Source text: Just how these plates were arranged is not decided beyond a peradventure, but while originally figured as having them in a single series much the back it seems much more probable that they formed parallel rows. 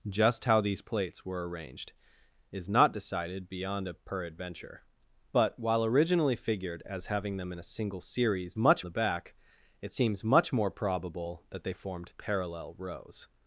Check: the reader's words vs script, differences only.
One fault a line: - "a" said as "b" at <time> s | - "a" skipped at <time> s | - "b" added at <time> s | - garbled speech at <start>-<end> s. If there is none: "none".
none